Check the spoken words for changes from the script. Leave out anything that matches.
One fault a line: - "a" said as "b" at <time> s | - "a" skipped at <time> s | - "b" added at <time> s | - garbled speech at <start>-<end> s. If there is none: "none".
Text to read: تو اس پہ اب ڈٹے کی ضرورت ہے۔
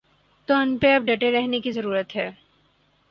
- "اس" said as "ان" at 0.5 s
- "رہنے" added at 1.3 s